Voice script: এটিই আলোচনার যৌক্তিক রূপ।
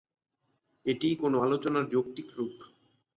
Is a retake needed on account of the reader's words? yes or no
yes